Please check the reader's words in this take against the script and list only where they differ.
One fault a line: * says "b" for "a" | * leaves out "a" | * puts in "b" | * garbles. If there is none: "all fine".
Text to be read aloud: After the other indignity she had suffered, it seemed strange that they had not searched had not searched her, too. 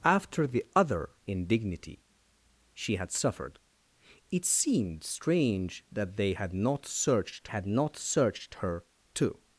all fine